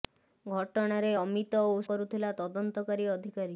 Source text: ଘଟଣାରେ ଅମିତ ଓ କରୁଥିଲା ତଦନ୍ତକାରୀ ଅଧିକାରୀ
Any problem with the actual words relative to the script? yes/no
no